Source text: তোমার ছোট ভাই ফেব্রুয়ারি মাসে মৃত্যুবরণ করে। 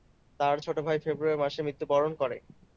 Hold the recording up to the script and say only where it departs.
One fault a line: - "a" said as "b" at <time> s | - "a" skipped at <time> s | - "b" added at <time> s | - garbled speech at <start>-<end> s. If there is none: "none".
- "তোমার" said as "তার" at 0.4 s